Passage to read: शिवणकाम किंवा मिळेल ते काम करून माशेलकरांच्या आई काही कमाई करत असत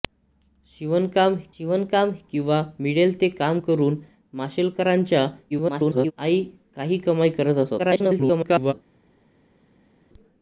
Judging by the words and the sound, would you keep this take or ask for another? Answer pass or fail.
fail